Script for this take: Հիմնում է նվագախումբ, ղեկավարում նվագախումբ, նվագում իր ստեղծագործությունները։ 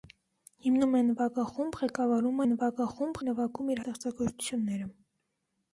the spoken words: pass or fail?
pass